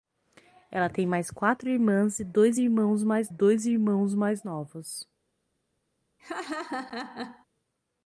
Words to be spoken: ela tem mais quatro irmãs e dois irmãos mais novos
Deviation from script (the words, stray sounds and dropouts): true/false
true